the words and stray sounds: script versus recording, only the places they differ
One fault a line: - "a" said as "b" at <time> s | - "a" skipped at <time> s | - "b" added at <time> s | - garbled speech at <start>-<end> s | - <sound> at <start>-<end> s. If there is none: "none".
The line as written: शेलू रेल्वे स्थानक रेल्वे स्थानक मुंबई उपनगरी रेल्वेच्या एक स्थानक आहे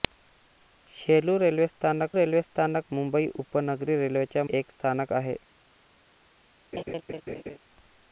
- laugh at 6.7-7.6 s